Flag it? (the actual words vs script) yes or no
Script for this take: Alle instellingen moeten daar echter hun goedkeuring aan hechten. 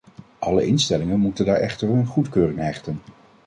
yes